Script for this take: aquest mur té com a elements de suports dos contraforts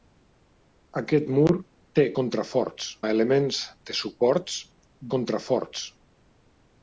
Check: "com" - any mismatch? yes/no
yes